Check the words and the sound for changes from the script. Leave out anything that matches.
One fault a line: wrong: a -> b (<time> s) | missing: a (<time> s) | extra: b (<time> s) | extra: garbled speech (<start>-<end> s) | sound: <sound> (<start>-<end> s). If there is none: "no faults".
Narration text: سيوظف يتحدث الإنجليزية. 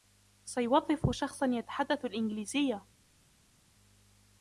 extra: شخصا (1.1 s)